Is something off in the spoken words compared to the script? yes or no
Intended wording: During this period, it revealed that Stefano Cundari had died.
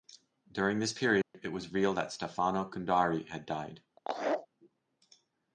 yes